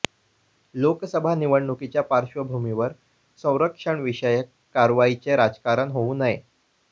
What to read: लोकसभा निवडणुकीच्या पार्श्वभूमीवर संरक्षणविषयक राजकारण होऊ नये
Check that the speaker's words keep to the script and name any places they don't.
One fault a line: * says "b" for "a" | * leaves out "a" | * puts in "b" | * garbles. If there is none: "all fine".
* puts in "कारवाईचे"